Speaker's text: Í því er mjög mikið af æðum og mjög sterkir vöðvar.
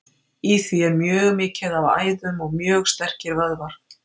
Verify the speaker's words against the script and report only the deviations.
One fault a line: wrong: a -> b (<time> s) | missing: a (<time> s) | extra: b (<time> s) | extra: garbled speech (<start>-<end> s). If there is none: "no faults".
no faults